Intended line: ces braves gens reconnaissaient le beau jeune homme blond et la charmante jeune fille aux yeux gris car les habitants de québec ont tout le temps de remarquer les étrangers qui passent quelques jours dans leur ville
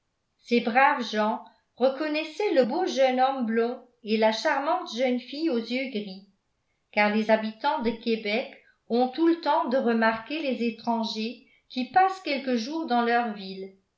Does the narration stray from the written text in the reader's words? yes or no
no